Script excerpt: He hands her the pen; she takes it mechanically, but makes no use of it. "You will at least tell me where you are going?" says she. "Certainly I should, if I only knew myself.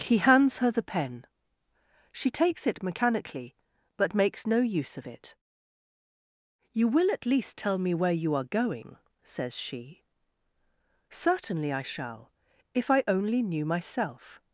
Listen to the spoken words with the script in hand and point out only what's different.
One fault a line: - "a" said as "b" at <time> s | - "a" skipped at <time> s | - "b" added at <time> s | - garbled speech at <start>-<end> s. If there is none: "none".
- "should" said as "shall" at 11.8 s